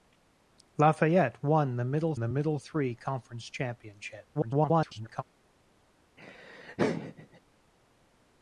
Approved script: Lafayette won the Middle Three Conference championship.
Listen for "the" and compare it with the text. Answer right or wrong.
right